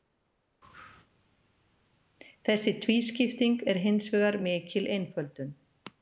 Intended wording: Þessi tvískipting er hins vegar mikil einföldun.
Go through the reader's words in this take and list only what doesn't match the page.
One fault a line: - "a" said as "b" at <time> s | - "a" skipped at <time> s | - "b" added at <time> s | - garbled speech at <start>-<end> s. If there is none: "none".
none